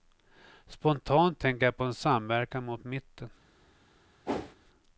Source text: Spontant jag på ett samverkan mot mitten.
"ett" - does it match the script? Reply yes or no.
no